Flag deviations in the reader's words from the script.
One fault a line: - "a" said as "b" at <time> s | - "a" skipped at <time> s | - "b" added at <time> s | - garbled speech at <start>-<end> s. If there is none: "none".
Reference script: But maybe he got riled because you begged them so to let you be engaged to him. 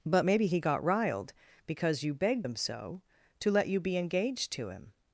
none